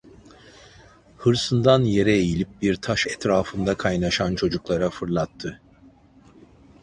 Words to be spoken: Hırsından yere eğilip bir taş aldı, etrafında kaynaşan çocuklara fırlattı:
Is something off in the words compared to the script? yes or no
yes